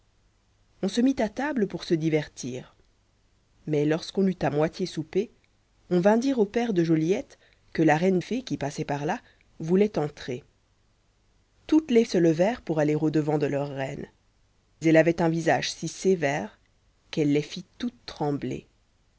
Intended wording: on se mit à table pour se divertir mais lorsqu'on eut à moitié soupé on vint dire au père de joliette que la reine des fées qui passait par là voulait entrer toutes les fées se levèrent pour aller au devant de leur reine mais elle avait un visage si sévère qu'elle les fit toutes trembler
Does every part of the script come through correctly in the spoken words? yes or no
no